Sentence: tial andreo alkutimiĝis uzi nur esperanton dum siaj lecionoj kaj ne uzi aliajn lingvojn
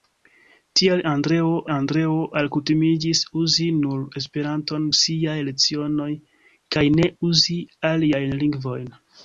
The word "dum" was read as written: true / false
false